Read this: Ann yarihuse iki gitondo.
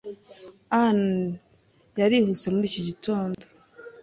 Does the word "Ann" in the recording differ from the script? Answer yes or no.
no